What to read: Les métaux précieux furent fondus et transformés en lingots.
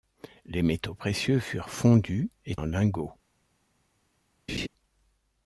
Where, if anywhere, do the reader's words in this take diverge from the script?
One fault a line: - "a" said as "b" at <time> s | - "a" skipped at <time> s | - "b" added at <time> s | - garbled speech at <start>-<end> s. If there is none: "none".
- "transformés" skipped at 2.5 s